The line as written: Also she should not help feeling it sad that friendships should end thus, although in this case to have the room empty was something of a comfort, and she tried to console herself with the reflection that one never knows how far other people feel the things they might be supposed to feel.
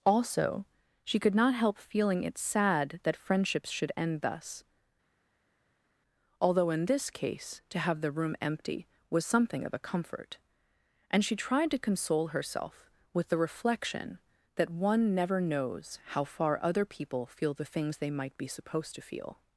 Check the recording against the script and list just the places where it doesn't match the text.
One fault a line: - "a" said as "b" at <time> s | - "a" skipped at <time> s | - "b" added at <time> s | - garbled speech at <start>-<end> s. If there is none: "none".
- "should" said as "could" at 1.2 s